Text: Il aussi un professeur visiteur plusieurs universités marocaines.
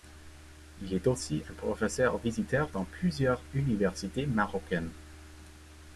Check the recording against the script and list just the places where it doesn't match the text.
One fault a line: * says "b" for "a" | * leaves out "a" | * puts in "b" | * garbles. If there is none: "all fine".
* puts in "est"
* puts in "dans"